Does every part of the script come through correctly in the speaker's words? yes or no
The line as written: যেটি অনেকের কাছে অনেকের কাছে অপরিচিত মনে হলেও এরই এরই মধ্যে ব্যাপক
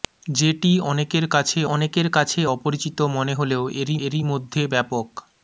yes